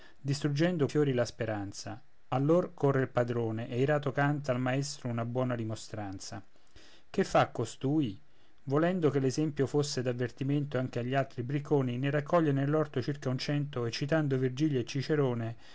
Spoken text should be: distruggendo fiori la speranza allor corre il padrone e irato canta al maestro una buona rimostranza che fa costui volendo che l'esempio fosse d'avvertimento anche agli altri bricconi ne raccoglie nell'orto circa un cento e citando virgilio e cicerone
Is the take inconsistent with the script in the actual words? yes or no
no